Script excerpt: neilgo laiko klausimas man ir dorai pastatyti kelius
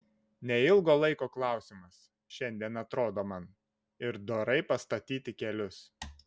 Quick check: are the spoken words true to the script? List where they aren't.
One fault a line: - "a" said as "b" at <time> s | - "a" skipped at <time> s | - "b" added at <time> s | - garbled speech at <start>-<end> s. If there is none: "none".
- "šiandien atrodo" added at 2.4 s